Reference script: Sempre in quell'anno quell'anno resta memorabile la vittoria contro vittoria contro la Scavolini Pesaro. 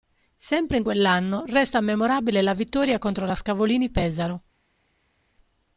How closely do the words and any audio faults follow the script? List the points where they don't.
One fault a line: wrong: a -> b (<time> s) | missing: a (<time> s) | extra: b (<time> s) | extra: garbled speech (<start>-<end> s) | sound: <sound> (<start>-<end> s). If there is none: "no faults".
missing: quell'anno (1.4 s)
missing: vittoria contro (3.3 s)